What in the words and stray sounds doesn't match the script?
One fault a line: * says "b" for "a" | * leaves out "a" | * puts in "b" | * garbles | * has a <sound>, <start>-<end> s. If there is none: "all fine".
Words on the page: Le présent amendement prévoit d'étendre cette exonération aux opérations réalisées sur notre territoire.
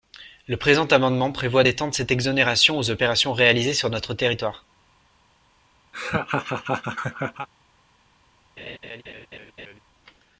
* has a laugh, 5.9-7.5 s
* has a laugh, 8.6-9.8 s